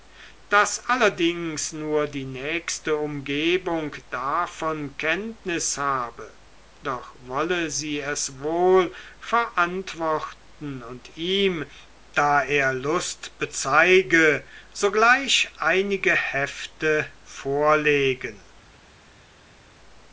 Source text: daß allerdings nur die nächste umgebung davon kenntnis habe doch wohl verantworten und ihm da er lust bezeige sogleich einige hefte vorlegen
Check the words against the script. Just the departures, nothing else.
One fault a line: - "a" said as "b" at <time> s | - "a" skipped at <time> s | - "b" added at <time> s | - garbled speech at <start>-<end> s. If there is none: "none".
- "wolle sie es" added at 7.2 s